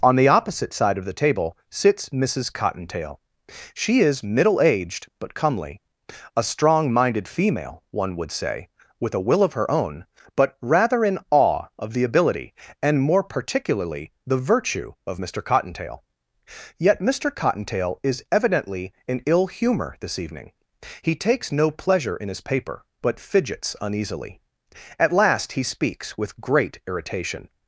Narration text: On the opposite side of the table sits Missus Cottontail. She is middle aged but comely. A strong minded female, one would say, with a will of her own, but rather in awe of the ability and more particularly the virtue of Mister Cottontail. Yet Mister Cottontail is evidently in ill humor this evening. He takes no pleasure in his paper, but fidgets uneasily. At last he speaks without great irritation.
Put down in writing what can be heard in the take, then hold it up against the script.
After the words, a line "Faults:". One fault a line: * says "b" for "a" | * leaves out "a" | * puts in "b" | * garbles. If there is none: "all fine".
On the opposite side of the table sits Missus Cottontail. She is middle aged but comely. A strong minded female, one would say, with a will of her own, but rather in awe of the ability and more particularly the virtue of Mister Cottontail. Yet Mister Cottontail is evidently in ill humor this evening. He takes no pleasure in his paper, but fidgets uneasily. At last he speaks with great irritation.
Faults:
* says "with" for "without"